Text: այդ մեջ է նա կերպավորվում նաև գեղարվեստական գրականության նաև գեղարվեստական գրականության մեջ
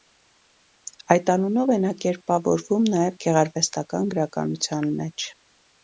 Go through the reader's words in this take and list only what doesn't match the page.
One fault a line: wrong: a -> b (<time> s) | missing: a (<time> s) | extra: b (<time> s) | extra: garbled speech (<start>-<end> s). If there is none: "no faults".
wrong: մեջ -> անունով (1.3 s)
missing: նաև գեղարվեստական գրականության (4.9 s)